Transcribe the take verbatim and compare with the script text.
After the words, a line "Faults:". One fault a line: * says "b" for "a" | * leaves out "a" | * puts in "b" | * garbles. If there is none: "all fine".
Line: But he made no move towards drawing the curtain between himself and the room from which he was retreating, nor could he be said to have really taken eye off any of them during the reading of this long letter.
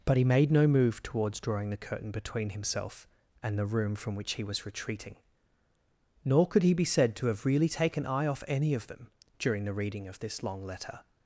But he made no move towards drawing the curtain between himself and the room from which he was retreating, nor could he be said to have really taken eye off any of them during the reading of this long letter.
Faults:
all fine